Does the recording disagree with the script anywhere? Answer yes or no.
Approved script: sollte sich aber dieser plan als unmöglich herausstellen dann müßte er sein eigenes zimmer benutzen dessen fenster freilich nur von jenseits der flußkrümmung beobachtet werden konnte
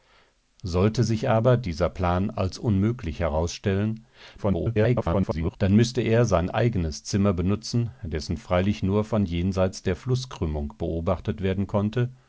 yes